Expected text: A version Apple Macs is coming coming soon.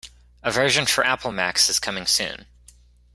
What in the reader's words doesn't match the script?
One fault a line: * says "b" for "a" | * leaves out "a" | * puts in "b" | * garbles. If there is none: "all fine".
* puts in "for"
* leaves out "coming"